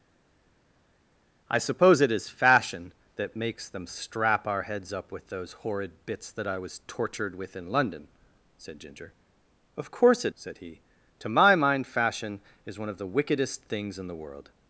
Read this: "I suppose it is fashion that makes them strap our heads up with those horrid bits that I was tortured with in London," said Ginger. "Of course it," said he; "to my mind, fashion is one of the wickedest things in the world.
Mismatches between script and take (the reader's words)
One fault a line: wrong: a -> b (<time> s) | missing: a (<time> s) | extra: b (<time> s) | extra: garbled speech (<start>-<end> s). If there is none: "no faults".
no faults